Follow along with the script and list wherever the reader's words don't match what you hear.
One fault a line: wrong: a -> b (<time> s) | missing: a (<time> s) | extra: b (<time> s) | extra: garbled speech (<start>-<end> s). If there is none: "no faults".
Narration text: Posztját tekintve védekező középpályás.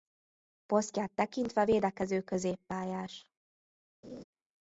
no faults